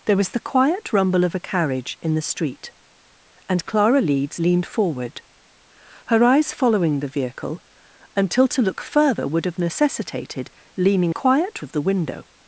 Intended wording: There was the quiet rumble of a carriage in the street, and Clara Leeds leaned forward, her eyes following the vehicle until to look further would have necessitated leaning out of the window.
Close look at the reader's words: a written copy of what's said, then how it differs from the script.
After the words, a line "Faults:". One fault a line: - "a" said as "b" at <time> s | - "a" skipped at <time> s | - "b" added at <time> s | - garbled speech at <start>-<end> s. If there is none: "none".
There was the quiet rumble of a carriage in the street, and Clara Leeds leaned forward, her eyes following the vehicle until to look further would have necessitated leaning quiet of the window.
Faults:
- "out" said as "quiet" at 11.1 s